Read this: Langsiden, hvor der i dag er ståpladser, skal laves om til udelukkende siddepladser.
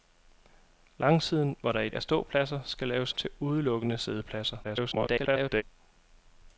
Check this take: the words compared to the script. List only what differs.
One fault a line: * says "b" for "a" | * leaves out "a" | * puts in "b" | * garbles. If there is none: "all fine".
* leaves out "dag"
* leaves out "om"
* garbles